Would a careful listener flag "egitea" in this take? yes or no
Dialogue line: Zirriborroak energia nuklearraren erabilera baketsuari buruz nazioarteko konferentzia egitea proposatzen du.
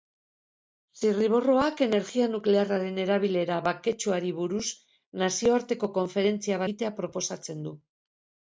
no